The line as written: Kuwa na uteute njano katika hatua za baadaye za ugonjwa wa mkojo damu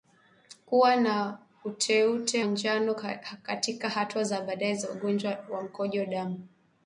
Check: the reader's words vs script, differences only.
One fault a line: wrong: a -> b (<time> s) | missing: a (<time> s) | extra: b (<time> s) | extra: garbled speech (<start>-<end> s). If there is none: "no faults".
no faults